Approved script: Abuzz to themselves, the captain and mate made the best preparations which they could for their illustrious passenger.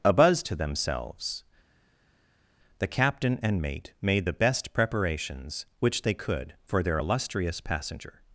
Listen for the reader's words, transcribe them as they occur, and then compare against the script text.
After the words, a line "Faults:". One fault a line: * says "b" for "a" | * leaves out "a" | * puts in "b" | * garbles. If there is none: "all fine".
Abuzz to themselves, the captain and mate made the best preparations which they could for their illustrious passenger.
Faults:
all fine